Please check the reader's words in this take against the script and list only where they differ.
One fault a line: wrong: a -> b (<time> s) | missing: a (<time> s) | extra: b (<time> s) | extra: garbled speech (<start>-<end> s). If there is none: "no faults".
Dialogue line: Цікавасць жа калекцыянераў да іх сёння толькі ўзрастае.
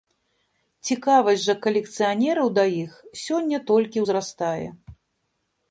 no faults